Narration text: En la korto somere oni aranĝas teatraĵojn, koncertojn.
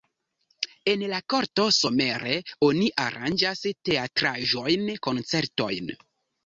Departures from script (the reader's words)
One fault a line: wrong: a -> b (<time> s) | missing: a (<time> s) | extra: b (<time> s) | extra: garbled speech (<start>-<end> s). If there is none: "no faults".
no faults